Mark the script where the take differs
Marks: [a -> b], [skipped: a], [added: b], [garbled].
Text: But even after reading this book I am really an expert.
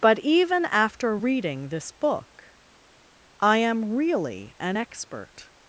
But even after reading this book I am really an expert.